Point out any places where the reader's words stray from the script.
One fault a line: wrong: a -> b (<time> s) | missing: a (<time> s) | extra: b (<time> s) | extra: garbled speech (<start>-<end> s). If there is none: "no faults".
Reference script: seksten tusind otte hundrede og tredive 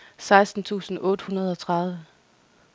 no faults